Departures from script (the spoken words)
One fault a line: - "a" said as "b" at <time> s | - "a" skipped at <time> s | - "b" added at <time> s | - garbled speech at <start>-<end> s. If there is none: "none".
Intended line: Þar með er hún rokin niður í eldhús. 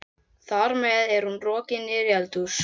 none